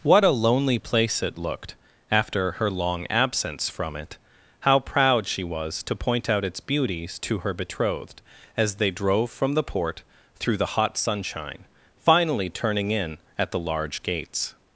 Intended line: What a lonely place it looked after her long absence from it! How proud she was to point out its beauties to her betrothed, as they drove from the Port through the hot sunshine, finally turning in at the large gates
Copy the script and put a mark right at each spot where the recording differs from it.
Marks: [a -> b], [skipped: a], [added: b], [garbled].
What a lonely place it looked after her long absence from it! How proud she was to point out its beauties to her betrothed, as they drove from the Port through the hot sunshine, finally turning in at the large gates